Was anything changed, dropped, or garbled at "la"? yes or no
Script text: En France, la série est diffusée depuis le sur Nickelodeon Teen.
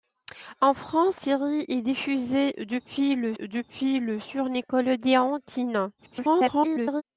yes